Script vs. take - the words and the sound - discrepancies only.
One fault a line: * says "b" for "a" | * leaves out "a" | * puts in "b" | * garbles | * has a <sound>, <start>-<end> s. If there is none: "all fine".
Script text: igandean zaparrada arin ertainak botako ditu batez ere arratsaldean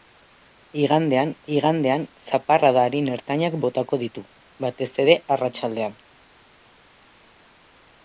* puts in "igandean"